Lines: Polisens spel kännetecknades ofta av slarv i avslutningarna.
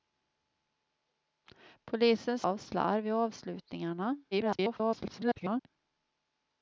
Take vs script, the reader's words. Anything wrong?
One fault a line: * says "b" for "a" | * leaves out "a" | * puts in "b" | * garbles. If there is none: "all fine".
* leaves out "spel kännetecknades ofta"
* garbles